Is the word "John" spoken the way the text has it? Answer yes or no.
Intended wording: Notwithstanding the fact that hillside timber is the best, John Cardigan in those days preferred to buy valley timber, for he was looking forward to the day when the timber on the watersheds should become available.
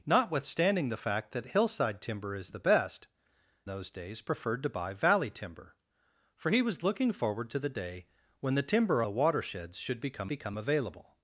no